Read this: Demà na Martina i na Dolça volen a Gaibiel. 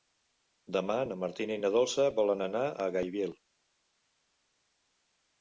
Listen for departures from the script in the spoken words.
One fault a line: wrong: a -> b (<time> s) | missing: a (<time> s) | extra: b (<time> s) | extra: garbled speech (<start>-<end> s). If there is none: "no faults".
extra: anar (2.5 s)